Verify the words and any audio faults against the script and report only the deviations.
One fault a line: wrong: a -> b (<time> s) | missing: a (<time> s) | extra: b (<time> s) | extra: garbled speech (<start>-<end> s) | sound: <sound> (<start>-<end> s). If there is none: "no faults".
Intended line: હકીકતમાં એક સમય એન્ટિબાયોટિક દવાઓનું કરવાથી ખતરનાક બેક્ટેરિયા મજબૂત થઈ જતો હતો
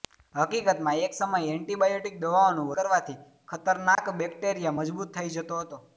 sound: dropout (3.9-4.0 s)